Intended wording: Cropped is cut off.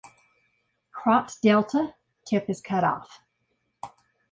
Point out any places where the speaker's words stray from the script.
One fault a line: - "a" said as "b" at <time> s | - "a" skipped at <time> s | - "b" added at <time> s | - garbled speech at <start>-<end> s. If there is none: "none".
- "delta tip" added at 1.4 s